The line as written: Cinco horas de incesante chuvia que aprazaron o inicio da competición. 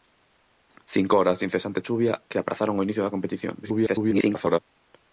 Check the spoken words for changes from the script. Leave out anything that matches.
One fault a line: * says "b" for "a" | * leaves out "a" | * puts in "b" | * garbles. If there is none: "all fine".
* garbles